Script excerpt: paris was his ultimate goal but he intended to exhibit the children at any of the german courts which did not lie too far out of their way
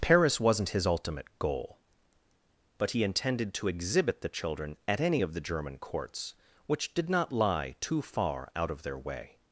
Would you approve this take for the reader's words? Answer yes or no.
no